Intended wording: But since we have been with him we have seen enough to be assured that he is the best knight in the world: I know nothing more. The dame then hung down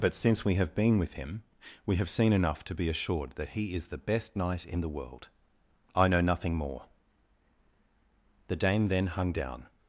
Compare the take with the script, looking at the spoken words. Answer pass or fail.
pass